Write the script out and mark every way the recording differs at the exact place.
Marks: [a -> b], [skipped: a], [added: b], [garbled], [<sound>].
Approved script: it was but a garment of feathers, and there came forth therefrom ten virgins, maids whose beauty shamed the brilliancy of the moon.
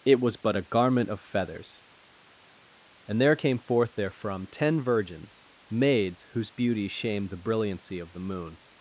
it was but a garment of feathers, and there came forth therefrom ten virgins, maids whose beauty shamed the brilliancy of the moon.